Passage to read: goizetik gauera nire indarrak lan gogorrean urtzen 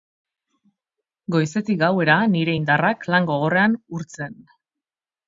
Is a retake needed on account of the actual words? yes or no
no